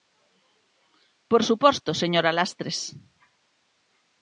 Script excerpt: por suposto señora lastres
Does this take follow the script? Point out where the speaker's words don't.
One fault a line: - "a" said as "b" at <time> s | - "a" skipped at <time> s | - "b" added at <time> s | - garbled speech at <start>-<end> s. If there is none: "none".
none